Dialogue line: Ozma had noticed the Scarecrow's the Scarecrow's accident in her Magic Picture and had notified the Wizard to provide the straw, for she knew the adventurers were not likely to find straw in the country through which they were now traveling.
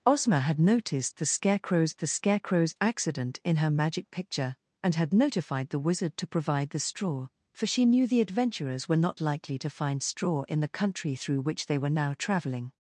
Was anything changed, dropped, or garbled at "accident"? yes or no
no